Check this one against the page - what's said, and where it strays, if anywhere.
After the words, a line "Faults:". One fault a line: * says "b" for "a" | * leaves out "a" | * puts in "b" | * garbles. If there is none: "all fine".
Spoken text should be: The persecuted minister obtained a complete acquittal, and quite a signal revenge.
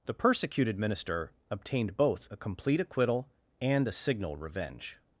The persecuted minister obtained both a complete acquittal, and a signal revenge.
Faults:
* puts in "both"
* leaves out "quite"